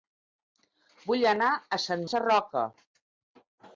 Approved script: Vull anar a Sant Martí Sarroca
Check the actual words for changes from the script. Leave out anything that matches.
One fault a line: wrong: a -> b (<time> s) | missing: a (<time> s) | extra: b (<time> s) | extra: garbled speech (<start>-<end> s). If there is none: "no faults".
missing: Martí (2.1 s)